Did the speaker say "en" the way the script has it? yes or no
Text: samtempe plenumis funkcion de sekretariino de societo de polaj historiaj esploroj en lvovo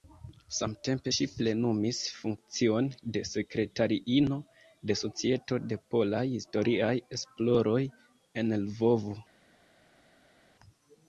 yes